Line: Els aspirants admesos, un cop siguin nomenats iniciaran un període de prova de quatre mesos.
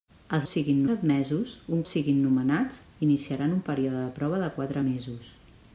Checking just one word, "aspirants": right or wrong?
wrong